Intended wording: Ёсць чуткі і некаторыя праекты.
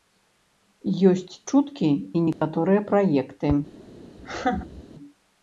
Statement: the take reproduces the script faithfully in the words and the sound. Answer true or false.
false